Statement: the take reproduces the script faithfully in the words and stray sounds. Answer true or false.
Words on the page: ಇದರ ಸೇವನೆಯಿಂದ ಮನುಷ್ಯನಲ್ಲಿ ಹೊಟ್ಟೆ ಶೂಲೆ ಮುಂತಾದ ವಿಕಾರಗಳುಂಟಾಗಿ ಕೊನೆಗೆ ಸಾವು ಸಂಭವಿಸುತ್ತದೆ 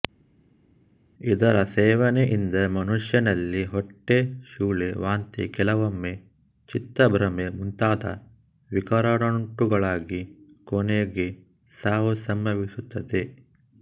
false